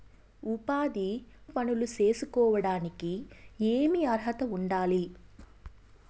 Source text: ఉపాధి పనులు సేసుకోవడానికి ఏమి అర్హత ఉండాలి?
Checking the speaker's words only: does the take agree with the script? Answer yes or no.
yes